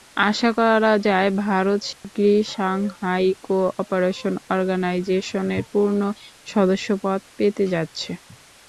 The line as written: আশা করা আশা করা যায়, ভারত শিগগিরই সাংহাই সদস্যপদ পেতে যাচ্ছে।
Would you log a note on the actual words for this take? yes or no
yes